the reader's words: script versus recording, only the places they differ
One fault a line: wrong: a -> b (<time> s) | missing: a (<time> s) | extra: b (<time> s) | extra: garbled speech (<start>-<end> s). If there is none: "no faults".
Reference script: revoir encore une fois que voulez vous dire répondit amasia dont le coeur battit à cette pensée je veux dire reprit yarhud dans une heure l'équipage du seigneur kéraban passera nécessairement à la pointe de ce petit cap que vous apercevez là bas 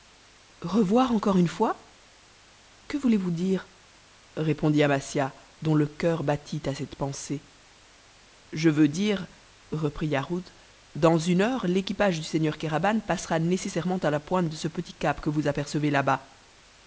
no faults